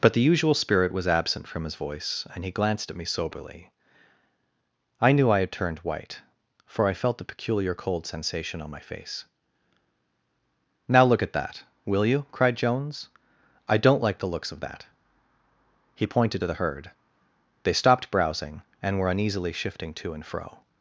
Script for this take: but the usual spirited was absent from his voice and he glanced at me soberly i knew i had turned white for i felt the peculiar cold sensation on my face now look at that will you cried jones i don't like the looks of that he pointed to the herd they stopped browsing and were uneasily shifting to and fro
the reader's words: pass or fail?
fail